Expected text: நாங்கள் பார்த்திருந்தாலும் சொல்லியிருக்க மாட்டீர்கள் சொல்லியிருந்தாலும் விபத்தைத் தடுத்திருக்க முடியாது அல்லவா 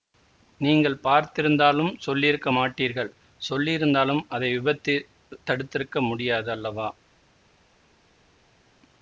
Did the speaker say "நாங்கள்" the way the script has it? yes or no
no